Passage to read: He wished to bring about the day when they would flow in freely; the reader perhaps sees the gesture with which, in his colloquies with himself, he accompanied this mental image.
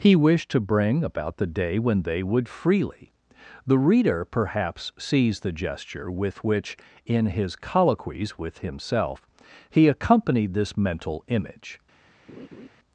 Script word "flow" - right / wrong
wrong